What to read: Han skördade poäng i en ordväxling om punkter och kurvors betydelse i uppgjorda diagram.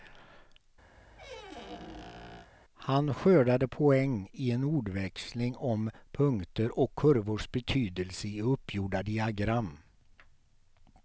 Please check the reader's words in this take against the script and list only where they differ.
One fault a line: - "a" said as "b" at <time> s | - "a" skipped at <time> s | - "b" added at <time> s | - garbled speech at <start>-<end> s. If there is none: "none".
none